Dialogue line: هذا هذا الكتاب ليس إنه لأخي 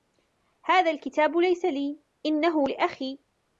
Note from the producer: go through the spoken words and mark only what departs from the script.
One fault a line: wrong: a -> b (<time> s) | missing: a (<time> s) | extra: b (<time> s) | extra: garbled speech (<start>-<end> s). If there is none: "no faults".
missing: هذا (0.9 s)
extra: لي (1.6 s)